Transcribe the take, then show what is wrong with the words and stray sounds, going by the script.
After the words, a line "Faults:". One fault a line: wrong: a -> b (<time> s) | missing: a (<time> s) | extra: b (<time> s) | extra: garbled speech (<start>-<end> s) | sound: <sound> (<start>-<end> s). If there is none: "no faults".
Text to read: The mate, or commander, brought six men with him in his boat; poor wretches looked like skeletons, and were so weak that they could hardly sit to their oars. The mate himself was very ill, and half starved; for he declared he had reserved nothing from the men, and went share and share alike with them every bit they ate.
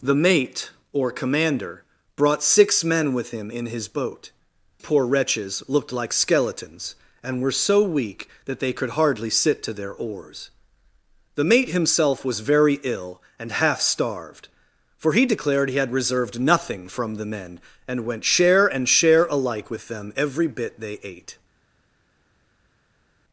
The mate, or commander, brought six men with him in his boat; poor wretches looked like skeletons, and were so weak that they could hardly sit to their oars. The mate himself was very ill, and half starved; for he declared he had reserved nothing from the men, and went share and share alike with them every bit they ate.
Faults:
no faults